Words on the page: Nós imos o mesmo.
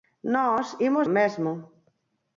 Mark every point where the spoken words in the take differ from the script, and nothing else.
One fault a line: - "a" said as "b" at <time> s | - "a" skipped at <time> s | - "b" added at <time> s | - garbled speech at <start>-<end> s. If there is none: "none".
none